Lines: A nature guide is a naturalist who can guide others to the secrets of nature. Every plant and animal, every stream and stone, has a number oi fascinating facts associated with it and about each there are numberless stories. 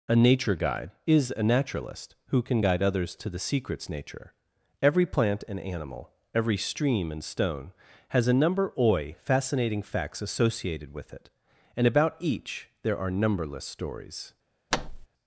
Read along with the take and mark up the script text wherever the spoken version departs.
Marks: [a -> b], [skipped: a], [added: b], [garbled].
A nature guide is a naturalist who can guide others to the secrets [skipped: of] nature. Every plant and animal, every stream and stone, has a number oi fascinating facts associated with it and about each there are numberless stories.